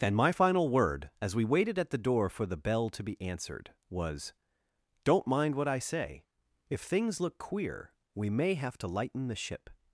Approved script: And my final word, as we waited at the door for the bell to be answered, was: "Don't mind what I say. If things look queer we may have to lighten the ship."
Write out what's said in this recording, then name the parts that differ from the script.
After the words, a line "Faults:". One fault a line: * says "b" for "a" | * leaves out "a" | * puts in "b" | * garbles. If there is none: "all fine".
And my final word, as we waited at the door for the bell to be answered, was: "Don't mind what I say. If things look queer we may have to lighten the ship."
Faults:
all fine